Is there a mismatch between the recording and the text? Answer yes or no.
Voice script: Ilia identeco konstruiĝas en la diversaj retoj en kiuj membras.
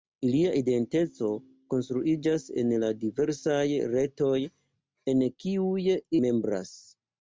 no